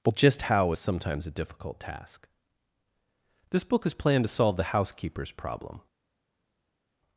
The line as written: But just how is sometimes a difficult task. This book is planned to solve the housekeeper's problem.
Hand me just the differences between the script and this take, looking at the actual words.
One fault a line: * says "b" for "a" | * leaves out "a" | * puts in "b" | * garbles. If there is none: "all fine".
all fine